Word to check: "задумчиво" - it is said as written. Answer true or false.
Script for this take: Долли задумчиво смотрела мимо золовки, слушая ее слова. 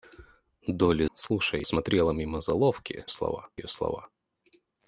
false